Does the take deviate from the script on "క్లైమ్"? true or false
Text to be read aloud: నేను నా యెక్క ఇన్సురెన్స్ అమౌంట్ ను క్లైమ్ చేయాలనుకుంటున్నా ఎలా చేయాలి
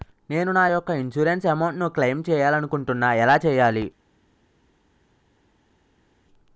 false